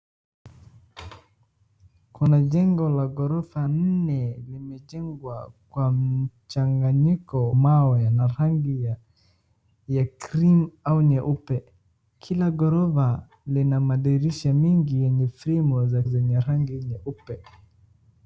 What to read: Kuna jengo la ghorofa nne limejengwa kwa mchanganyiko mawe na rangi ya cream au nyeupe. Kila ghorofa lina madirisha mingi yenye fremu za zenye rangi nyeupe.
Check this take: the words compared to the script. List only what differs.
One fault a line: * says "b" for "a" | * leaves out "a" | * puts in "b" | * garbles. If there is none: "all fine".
all fine